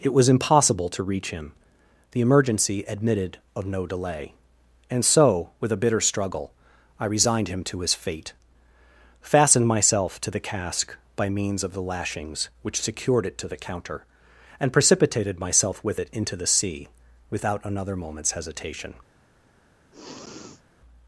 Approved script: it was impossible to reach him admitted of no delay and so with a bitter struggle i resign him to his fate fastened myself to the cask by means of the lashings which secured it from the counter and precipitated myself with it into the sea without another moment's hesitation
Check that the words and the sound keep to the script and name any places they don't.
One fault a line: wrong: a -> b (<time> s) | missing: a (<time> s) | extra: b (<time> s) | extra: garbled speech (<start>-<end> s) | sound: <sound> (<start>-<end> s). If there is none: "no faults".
extra: the emergency (2.1 s)
wrong: resign -> resigned (7.0 s)
wrong: from -> to (13.4 s)
sound: sniff (19.9-20.6 s)